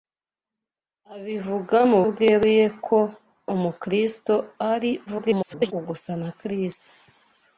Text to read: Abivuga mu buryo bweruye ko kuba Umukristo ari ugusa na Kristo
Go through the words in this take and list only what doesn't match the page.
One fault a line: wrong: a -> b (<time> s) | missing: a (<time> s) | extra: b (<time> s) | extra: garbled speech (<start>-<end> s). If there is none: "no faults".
missing: buryo (2.0 s)
missing: kuba (3.0 s)
extra: garbled speech (5.1-5.7 s)